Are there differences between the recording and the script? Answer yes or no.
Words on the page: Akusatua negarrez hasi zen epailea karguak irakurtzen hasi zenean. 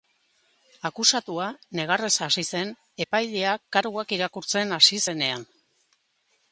no